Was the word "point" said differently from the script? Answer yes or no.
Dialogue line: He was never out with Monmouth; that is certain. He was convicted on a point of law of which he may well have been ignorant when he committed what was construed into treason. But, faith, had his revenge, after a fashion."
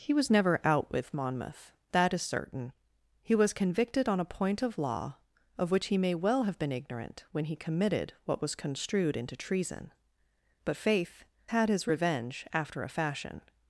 no